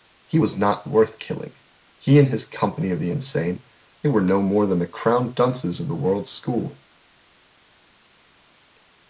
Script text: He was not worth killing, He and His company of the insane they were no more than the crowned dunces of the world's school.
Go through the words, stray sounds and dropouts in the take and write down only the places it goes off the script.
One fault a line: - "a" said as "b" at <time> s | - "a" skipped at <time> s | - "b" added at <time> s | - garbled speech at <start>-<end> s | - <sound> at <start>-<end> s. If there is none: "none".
none